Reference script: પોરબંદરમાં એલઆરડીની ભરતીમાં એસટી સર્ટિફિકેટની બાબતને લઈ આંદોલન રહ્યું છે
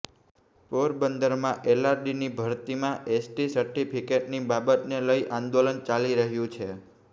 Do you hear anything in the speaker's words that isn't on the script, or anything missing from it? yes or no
yes